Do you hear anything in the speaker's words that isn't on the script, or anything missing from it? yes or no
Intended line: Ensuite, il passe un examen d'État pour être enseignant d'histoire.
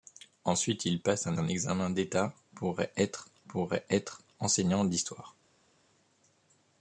yes